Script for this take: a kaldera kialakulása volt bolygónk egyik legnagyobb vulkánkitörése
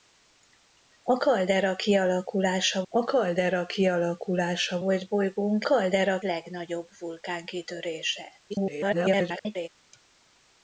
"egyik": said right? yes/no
no